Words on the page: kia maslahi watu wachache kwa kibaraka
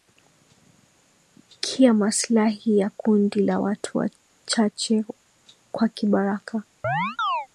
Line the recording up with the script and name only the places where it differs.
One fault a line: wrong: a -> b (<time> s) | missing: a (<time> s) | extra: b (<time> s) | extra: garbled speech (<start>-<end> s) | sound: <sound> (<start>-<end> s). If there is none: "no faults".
extra: ya kundi la (2.8 s)
sound: chirp (6.8-7.5 s)